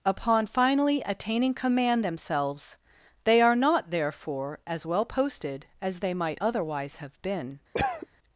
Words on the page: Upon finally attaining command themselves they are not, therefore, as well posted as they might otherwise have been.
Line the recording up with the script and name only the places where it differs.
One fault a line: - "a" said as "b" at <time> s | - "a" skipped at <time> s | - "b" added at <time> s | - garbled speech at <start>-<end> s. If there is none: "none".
none